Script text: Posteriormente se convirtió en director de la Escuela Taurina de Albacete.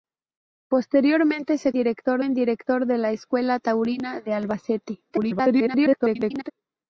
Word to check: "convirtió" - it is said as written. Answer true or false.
false